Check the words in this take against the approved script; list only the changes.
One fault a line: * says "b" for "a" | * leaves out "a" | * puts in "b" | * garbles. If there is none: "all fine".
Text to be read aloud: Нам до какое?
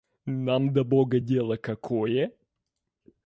* puts in "бога дело"